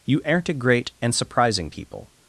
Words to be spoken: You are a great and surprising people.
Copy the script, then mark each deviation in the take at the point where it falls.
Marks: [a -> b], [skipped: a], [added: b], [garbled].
You [are -> aren't] a great and surprising people.